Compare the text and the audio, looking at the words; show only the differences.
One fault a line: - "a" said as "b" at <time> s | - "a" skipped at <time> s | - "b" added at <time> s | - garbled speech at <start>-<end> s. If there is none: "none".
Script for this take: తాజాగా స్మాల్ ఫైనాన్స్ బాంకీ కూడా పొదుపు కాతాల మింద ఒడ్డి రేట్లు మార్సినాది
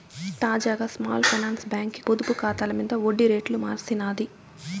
- "కూడా" skipped at 2.0 s